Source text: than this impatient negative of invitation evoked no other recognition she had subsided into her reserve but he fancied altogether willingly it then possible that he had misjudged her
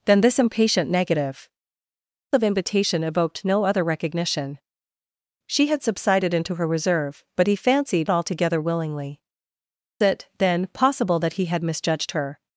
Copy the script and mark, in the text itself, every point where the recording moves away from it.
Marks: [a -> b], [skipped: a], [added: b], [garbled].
than this impatient negative of invitation evoked no other recognition she had subsided into her reserve but he fancied altogether willingly it then possible that he had misjudged her